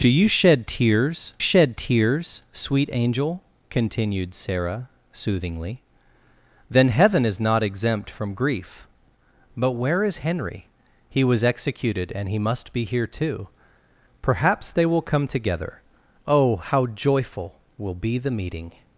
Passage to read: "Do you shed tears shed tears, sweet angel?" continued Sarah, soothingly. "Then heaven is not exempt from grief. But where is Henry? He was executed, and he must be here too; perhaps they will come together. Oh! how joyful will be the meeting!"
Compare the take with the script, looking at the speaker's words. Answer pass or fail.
pass